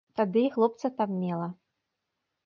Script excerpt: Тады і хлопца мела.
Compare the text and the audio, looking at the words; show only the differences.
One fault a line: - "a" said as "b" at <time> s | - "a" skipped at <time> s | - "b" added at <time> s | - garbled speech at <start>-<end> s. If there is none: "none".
- "там" added at 1.0 s